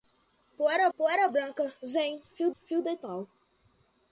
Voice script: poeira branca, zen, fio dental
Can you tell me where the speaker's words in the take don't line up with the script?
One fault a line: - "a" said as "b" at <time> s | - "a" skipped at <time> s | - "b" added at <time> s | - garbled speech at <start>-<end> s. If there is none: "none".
- "poeira" added at 1.0 s
- "fio" added at 2.6 s